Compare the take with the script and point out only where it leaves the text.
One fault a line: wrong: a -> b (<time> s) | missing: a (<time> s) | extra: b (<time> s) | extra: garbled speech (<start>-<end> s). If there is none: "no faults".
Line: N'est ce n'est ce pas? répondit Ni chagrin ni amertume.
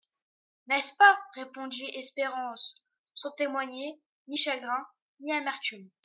wrong: n'est ce pas répondit -> pas répondit Espérance sans témoigner (0.9 s)